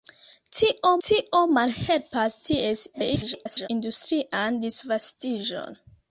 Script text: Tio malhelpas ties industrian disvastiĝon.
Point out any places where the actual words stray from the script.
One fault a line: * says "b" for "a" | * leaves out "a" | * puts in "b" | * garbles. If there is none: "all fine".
* puts in "tio"
* garbles